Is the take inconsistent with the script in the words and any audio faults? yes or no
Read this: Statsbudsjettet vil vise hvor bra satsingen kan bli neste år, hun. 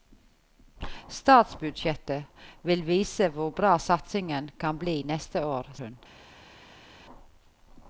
no